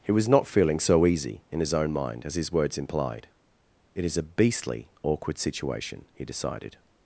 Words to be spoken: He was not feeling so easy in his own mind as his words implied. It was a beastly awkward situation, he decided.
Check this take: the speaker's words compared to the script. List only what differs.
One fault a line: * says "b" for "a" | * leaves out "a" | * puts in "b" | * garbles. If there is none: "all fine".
* says "is" for "was"